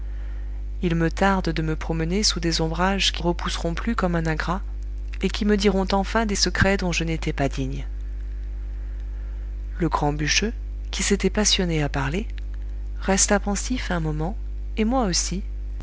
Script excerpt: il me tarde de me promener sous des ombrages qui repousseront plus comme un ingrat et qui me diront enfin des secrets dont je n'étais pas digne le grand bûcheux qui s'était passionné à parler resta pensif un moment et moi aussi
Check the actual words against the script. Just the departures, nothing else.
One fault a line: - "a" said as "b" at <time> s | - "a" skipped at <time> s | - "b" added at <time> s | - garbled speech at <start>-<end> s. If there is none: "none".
none